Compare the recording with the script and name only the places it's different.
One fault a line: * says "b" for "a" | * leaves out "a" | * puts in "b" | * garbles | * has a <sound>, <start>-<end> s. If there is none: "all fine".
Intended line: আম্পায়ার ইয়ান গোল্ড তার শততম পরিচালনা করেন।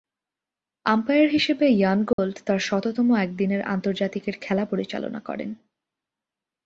* puts in "হিসেবে"
* has a dropout, 2.1-2.2 s
* puts in "একদিনের আন্তর্জাতিকের খেলা"